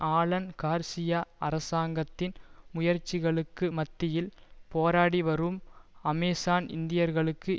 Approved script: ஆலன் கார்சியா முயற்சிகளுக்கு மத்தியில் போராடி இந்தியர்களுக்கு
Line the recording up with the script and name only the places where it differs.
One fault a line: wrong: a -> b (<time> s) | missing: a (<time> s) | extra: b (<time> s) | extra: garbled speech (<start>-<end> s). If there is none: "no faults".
extra: அரசாங்கத்தின் (1.4 s)
extra: வரும் அமேசான் (5.2 s)